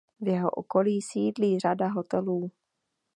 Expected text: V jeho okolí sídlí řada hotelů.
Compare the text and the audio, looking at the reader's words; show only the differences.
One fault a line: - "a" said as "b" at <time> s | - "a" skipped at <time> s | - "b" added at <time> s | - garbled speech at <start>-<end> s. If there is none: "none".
none